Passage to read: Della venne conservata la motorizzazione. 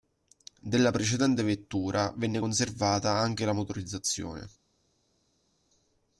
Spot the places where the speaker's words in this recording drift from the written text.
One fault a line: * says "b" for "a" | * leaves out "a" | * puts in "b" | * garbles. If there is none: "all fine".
* puts in "precedente vettura"
* puts in "anche"